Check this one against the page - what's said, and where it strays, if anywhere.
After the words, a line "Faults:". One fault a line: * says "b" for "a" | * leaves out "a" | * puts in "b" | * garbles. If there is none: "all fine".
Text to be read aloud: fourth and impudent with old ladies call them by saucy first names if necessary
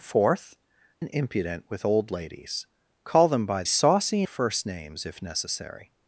fourth and impudent with old ladies call them by saucy first names if necessary
Faults:
all fine